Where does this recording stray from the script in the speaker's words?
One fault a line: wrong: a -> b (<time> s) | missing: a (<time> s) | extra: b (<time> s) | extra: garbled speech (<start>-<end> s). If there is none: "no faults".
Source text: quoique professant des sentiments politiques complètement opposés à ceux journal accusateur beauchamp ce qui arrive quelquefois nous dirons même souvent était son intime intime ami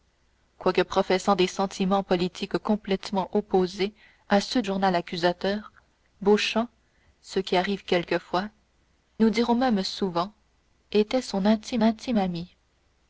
no faults